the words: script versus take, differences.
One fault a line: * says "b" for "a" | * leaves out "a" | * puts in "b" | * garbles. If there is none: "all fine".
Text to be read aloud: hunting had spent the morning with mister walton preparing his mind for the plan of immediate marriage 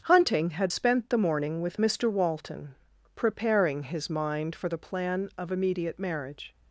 all fine